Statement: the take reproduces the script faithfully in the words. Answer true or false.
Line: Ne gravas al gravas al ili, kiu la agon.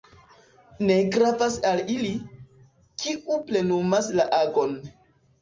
false